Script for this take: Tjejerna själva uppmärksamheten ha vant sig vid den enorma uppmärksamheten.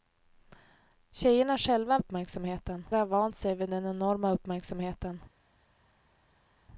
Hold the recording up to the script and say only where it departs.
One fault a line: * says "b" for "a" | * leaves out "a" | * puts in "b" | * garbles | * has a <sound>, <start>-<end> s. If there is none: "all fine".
all fine